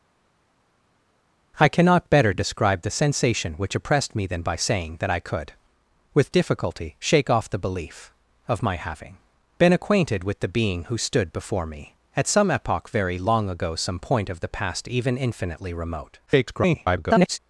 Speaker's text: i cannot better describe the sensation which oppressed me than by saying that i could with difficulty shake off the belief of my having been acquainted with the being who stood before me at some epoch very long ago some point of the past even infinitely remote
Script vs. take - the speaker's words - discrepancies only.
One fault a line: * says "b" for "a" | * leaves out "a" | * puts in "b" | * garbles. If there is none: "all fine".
* garbles